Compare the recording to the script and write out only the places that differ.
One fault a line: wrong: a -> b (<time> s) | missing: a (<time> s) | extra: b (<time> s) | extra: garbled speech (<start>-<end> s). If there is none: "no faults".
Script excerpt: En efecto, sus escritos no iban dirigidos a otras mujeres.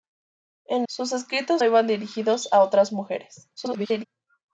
missing: efecto (0.9 s)
missing: no (1.6 s)
extra: garbled speech (3.6-4.1 s)